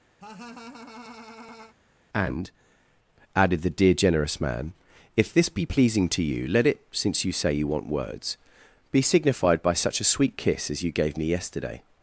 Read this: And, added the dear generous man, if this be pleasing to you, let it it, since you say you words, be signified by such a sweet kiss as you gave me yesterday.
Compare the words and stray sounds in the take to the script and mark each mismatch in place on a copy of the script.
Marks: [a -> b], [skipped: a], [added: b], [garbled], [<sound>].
[laugh] And, added the dear generous man, if this be pleasing to you, let it [skipped: it,] since you say you [added: want] words, be signified by such a sweet kiss as you gave me yesterday.